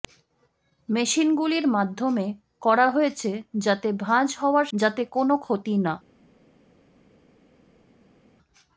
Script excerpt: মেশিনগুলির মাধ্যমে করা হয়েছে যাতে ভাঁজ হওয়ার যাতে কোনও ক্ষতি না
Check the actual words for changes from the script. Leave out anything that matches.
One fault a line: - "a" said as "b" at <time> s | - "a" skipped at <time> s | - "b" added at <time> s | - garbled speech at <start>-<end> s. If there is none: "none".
none